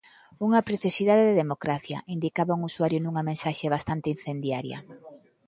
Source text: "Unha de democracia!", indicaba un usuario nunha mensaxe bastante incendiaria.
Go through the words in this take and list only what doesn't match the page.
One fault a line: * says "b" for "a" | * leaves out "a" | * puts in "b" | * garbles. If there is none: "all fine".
* puts in "preciosidade"